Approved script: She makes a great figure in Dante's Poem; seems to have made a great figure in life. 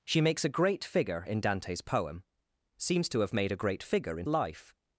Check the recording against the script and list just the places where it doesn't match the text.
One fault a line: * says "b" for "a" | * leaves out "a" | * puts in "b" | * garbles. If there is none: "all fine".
all fine